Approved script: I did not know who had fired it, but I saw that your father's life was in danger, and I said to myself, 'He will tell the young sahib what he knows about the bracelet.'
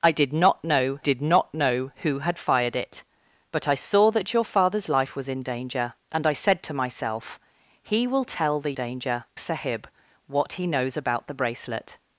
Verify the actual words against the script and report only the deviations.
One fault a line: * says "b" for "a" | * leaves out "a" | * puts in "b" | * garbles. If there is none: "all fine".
* puts in "did not know"
* says "danger" for "young"